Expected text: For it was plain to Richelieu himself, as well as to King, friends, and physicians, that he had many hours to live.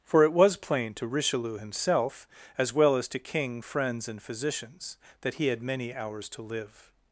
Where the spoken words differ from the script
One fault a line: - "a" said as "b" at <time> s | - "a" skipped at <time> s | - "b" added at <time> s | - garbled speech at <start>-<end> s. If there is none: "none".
none